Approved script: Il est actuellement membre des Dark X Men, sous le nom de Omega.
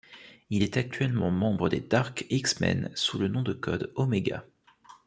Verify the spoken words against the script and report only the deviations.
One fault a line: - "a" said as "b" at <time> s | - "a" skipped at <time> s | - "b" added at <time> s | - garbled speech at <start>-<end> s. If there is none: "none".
- "code" added at 3.5 s